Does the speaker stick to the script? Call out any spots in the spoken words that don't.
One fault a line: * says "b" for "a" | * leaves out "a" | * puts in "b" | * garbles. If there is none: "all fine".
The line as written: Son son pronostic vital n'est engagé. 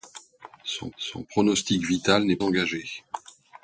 all fine